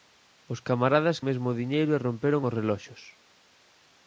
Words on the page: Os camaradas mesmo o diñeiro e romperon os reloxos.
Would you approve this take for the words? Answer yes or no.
yes